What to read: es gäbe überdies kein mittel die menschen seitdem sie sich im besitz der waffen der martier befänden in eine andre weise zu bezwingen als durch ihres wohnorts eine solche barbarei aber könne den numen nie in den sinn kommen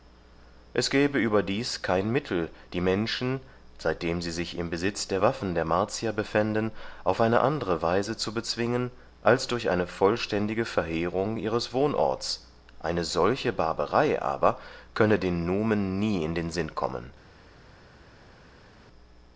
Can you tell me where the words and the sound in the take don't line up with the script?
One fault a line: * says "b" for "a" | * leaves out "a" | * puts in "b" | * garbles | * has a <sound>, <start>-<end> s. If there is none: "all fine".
* says "auf" for "in"
* puts in "eine vollständige verheerung"